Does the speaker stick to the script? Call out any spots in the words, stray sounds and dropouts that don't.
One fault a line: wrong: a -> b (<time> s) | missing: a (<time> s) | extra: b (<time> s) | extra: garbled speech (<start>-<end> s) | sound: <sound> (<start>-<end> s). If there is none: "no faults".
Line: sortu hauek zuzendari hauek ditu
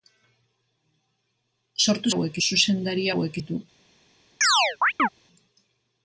sound: chirp (4.4-5.1 s)